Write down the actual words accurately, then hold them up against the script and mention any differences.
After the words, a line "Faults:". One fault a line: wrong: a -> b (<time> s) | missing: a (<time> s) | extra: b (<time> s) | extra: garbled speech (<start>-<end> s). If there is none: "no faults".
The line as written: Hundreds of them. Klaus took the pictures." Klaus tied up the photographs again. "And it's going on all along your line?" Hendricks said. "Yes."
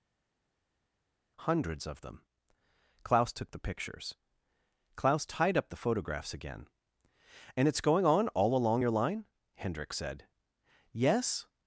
Hundreds of them. Klaus took the pictures." Klaus tied up the photographs again. "And it's going on all along your line?" Hendricks said. "Yes."
Faults:
no faults